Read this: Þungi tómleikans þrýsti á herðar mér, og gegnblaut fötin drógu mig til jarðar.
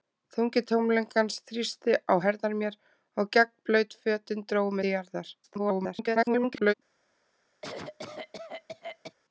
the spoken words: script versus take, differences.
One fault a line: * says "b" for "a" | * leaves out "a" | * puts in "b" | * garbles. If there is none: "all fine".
* leaves out "mig"
* garbles